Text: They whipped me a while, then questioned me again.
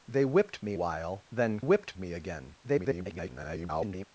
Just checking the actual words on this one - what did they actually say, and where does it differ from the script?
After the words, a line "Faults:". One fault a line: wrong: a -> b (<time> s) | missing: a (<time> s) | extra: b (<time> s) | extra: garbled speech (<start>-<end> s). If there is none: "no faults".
They whipped me while, then whipped me again. [garbled]
Faults:
missing: a (0.7 s)
wrong: questioned -> whipped (1.6 s)
extra: garbled speech (2.6-4.1 s)